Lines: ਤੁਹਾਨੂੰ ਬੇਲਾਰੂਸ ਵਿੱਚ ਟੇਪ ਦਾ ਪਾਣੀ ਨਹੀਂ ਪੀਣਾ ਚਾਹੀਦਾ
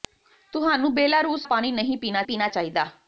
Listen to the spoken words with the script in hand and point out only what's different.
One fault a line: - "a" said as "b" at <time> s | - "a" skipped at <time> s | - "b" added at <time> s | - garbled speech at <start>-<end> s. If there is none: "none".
- "ਵਿੱਚ ਟੇਪ ਦਾ" skipped at 1.5 s
- "ਪੀਣਾ" added at 2.2 s